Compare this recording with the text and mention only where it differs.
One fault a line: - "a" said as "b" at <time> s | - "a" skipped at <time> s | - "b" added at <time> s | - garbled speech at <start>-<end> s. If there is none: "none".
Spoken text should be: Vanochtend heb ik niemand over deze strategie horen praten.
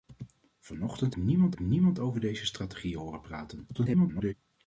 - "heb" said as "niemand" at 1.2 s
- garbled speech at 3.7-4.3 s